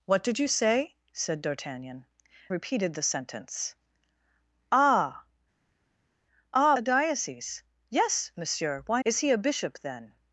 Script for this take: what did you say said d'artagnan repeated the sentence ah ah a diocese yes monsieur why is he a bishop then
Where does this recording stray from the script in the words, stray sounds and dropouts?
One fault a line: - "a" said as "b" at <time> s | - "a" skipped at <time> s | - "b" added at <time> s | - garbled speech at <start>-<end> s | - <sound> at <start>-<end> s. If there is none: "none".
none